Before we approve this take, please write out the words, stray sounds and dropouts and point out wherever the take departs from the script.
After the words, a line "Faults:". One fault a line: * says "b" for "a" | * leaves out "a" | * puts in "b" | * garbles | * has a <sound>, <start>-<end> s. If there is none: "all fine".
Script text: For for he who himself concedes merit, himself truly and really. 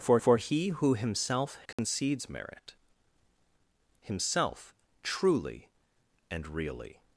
For for he who himself concedes merit, himself truly and really.
Faults:
* has a dropout, 1.7-1.8 s